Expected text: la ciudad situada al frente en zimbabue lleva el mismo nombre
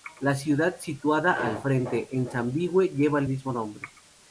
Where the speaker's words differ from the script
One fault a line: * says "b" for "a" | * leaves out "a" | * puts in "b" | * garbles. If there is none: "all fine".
all fine